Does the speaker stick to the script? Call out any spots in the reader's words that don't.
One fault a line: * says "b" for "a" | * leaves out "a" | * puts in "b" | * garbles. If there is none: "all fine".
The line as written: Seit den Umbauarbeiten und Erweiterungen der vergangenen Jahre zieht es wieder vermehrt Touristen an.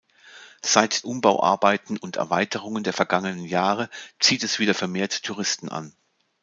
* leaves out "den"